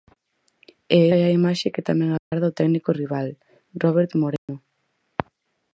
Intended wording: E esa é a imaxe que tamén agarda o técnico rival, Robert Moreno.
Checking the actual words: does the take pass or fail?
fail